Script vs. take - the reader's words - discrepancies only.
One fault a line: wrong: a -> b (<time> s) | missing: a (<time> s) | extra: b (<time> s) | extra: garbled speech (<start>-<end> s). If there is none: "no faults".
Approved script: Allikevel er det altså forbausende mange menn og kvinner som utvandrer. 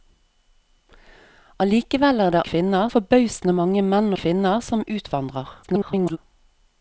wrong: altså -> kvinner (2.5 s)
missing: og (4.1 s)
extra: garbled speech (5.6-6.2 s)